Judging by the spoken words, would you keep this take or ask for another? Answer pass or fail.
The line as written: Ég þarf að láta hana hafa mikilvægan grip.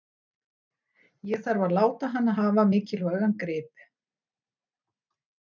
pass